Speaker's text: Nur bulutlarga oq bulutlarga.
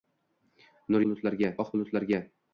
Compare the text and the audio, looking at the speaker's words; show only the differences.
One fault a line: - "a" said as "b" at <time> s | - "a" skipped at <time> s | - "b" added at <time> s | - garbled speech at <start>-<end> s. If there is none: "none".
none